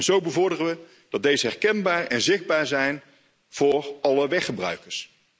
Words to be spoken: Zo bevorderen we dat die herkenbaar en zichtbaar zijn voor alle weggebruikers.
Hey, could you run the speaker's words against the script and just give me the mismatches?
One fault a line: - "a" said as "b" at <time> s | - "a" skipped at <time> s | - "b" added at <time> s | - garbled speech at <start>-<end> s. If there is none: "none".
- "die" said as "deze" at 1.2 s